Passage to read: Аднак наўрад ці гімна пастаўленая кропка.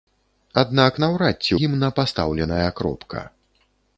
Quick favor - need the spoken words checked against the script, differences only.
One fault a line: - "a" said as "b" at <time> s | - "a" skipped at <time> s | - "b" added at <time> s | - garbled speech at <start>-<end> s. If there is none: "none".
none